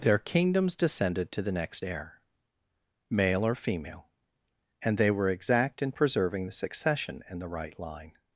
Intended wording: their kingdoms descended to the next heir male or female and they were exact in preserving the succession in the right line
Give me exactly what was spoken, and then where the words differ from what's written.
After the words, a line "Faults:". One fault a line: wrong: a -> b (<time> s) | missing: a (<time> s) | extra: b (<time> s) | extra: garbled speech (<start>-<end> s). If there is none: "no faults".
their kingdoms descended to the next heir male or female and they were exact in preserving the succession in the right line
Faults:
no faults